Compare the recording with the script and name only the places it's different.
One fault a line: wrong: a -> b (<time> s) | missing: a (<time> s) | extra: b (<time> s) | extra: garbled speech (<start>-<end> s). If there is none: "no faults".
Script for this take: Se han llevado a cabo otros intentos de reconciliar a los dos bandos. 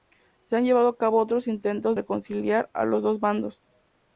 missing: de (1.9 s)